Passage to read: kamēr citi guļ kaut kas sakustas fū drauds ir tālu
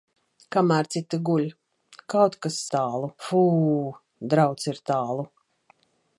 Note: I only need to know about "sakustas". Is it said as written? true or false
false